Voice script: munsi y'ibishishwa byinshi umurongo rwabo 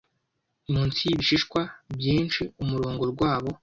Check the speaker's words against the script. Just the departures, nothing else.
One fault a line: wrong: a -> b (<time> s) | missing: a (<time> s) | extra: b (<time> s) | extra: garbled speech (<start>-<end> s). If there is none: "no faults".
no faults